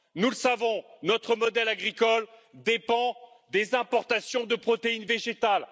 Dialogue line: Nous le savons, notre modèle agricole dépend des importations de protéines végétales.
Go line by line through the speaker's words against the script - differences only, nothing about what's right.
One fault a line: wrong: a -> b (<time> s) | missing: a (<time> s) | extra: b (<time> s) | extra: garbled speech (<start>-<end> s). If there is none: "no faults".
no faults